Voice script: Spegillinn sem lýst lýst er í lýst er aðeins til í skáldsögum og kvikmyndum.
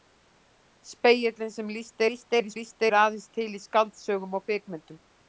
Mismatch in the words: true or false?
false